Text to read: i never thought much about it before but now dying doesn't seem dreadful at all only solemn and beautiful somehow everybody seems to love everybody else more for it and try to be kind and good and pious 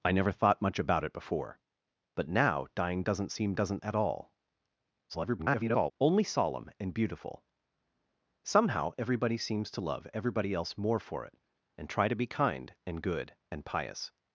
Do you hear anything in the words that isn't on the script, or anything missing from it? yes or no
yes